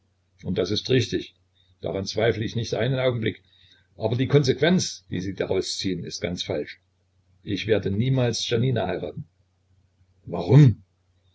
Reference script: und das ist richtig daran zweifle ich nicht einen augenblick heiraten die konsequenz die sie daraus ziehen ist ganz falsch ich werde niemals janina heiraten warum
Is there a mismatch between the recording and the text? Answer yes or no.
yes